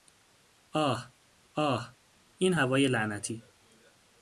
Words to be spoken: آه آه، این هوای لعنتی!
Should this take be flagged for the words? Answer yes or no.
no